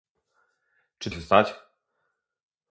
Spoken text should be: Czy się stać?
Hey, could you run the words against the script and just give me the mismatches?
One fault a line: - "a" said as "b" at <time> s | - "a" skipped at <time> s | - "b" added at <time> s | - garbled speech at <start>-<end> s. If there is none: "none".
none